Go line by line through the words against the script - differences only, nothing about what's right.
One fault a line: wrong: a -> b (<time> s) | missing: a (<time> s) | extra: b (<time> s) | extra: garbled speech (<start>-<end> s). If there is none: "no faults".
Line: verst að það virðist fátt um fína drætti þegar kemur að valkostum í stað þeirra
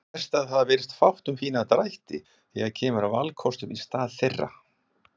no faults